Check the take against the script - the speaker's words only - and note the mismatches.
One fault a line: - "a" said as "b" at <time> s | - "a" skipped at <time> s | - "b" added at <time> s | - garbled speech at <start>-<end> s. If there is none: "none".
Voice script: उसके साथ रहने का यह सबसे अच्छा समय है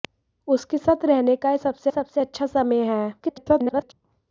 - "सबसे" added at 1.9 s
- garbled speech at 3.2-3.9 s